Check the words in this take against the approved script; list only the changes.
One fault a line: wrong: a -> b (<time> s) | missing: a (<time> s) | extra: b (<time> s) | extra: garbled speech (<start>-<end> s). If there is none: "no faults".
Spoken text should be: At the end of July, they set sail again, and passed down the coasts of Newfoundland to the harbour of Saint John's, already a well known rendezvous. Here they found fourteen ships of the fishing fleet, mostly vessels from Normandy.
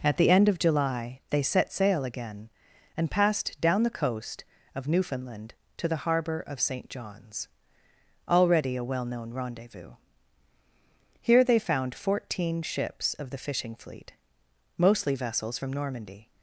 wrong: coasts -> coast (3.9 s)